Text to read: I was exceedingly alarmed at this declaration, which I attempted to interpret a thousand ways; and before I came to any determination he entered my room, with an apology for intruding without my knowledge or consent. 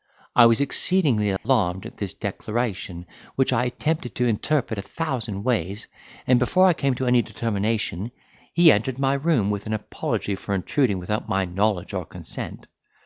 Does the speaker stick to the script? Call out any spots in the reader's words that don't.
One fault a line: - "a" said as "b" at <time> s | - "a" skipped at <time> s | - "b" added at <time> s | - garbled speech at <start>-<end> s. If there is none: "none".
none